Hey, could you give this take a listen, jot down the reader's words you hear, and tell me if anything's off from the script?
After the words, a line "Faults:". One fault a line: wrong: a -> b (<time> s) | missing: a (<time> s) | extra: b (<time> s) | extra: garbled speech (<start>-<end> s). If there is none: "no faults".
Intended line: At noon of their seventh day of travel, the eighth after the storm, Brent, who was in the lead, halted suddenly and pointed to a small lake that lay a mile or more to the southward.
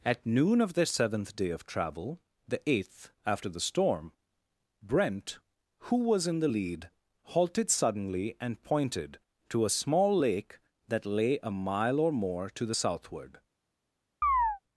At noon of their seventh day of travel, the eighth after the storm, Brent, who was in the lead, halted suddenly and pointed to a small lake that lay a mile or more to the southward.
Faults:
no faults